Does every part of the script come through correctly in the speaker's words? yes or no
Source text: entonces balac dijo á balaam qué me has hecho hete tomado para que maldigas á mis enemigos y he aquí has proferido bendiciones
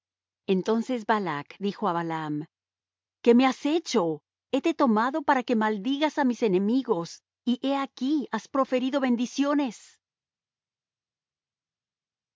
yes